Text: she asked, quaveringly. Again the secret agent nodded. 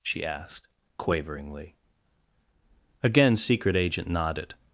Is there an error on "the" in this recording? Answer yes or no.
yes